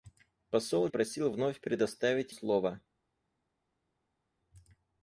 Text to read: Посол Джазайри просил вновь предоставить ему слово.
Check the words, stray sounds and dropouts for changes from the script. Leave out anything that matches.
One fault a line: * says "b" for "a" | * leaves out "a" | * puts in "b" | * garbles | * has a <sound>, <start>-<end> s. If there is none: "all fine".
* leaves out "Джазайри"
* leaves out "ему"